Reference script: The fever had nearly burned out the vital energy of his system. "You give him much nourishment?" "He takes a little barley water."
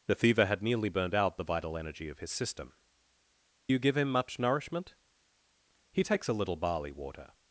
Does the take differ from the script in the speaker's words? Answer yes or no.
no